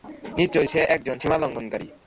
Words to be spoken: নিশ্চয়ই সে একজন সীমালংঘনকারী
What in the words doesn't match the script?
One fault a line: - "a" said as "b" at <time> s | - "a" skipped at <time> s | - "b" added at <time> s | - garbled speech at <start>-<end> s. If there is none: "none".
none